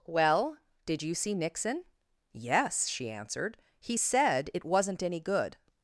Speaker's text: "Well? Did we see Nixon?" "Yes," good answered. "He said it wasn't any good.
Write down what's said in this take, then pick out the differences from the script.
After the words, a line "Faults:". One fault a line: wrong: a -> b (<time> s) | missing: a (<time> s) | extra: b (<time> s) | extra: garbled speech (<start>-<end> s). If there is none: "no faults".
"Well? Did you see Nixon?" "Yes," she answered. "He said it wasn't any good.
Faults:
wrong: we -> you (1.0 s)
wrong: good -> she (2.9 s)